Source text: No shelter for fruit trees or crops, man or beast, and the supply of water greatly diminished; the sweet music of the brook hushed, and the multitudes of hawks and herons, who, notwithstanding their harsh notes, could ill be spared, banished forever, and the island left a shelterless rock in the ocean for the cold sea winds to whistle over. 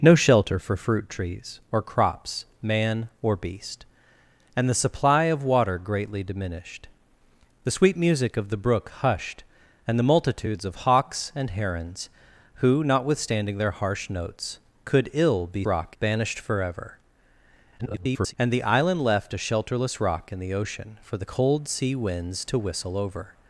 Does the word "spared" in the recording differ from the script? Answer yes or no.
yes